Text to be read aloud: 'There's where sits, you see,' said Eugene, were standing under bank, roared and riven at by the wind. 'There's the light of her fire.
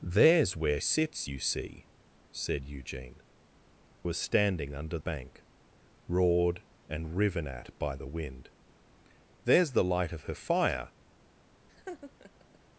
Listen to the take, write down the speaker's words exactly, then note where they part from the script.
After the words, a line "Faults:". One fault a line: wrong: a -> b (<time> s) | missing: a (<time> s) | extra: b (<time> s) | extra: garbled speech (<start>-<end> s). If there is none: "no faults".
'There's where sits, you see,' said Eugene, were standing under bank, roared and riven at by the wind. 'There's the light of her fire.
Faults:
no faults